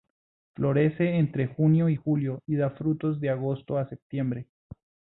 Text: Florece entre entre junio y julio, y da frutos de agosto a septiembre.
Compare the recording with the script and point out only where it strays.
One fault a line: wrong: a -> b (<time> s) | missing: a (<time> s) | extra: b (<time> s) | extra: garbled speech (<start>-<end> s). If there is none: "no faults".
missing: entre (1.4 s)